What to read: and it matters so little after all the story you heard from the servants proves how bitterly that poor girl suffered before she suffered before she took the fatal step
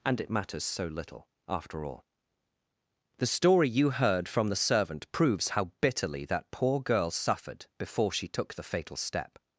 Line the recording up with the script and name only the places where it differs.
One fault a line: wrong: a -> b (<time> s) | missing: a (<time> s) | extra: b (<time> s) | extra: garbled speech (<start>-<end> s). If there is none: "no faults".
wrong: servants -> servant (4.6 s)
missing: suffered before she (8.3 s)